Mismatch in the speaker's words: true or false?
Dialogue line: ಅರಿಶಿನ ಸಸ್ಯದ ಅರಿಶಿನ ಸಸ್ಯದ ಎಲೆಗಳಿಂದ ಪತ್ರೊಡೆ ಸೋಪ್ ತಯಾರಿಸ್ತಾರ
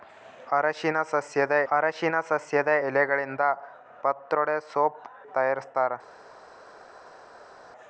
false